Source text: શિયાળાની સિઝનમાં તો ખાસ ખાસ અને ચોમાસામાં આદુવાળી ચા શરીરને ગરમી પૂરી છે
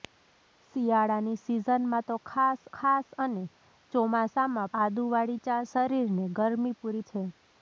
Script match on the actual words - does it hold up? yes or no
yes